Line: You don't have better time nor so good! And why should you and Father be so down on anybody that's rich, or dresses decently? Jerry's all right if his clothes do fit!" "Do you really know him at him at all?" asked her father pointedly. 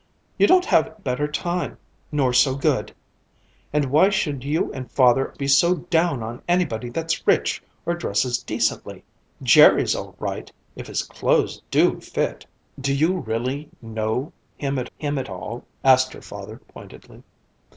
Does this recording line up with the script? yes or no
yes